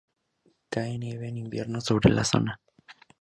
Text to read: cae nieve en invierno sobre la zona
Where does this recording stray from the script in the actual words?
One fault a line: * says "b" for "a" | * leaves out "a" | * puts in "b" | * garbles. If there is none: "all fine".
all fine